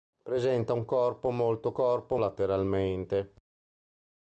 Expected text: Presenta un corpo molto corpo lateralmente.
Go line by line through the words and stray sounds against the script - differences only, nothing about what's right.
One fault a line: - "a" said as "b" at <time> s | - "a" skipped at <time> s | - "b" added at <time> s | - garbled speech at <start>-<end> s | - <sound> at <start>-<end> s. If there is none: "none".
none